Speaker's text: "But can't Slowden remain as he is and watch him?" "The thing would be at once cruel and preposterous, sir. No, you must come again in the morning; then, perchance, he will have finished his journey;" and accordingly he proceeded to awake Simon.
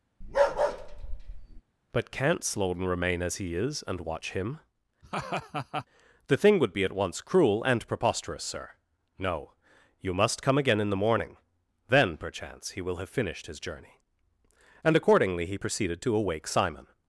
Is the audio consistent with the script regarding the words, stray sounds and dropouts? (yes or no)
no